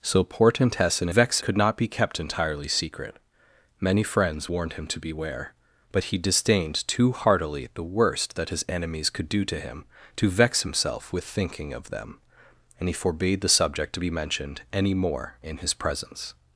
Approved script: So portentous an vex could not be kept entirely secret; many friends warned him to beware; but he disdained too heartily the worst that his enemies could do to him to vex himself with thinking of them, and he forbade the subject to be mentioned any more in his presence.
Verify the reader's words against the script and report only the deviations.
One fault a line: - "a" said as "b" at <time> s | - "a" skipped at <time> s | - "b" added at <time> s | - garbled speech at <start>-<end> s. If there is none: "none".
none